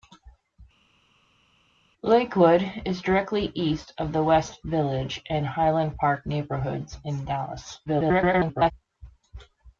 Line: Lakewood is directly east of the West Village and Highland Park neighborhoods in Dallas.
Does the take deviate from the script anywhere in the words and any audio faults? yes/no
yes